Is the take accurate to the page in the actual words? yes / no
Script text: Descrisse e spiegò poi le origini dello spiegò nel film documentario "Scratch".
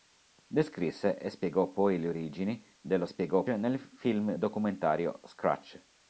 yes